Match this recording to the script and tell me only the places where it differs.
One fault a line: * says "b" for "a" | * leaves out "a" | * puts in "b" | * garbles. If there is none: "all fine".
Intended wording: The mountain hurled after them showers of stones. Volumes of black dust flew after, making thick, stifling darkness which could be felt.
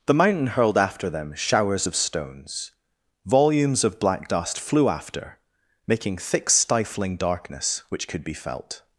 all fine